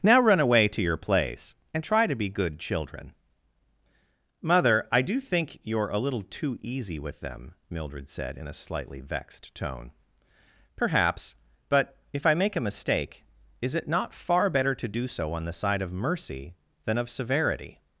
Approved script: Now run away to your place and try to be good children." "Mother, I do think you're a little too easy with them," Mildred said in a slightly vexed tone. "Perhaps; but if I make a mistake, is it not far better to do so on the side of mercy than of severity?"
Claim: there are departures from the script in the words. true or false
false